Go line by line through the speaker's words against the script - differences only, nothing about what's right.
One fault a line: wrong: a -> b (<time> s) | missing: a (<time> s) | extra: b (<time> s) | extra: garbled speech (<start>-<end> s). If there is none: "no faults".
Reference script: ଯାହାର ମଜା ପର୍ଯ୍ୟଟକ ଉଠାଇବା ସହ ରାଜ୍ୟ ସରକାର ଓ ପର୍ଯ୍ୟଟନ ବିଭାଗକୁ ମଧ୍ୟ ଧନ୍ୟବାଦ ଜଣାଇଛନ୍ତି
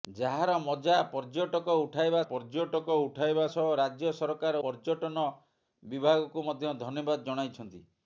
extra: ପର୍ଯ୍ୟଟକ ଉଠାଇବା (2.3 s)
missing: ଓ (4.6 s)